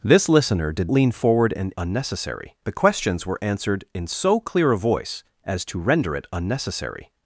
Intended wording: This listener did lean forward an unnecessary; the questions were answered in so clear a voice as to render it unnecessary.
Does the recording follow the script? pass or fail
pass